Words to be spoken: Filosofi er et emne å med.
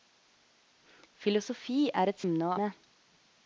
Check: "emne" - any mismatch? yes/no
no